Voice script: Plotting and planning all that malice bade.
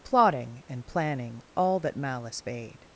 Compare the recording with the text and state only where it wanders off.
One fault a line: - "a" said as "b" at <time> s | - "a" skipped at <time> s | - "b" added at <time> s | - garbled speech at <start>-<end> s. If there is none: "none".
none